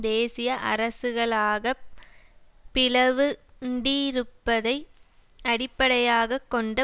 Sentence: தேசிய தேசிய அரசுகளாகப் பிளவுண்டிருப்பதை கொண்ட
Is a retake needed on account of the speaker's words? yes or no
yes